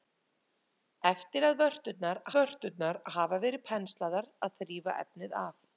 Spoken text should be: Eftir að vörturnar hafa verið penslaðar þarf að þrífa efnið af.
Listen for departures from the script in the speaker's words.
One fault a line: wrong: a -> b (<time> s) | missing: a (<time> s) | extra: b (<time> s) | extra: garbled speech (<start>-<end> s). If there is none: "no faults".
extra: vörturnar (2.3 s)
missing: þarf (4.3 s)